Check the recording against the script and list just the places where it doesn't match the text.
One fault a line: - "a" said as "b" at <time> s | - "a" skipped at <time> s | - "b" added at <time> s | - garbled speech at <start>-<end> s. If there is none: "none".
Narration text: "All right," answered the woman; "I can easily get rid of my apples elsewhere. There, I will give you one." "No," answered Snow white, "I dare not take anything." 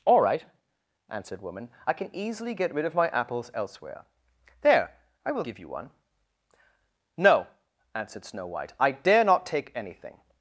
- "the" skipped at 1.4 s